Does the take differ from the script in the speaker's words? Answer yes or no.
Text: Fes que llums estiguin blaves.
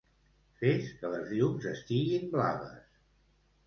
yes